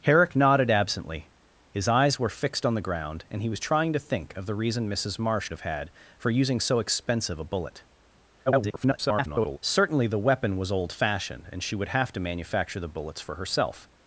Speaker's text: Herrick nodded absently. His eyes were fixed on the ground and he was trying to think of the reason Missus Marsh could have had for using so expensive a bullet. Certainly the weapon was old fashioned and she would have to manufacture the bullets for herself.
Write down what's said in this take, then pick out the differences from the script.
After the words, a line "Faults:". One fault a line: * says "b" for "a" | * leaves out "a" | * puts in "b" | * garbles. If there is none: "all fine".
Herrick nodded absently. His eyes were fixed on the ground and he was trying to think of the reason Missus Marsh have had for using so expensive a bullet. [garbled] Certainly the weapon was old fashioned and she would have to manufacture the bullets for herself.
Faults:
* leaves out "could"
* garbles